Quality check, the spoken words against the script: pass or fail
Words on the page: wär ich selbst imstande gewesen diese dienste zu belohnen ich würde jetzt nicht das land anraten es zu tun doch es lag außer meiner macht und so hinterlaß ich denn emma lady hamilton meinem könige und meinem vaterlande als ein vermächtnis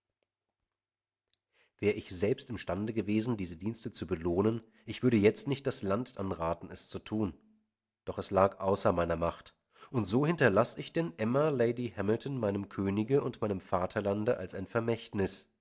pass